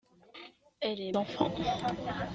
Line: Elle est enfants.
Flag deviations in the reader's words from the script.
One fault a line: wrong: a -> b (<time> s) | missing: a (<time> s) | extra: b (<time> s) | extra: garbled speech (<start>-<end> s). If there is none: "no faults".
no faults